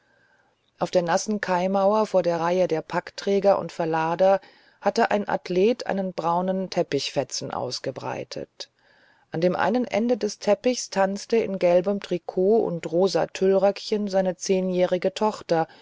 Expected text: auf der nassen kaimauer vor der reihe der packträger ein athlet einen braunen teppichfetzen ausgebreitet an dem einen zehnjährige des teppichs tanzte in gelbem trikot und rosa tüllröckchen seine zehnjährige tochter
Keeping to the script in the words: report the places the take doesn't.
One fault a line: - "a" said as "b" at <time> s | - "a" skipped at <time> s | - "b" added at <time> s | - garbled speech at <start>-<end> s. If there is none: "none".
- "und verlader hatte" added at 3.6 s
- "zehnjährige" said as "ende" at 9.8 s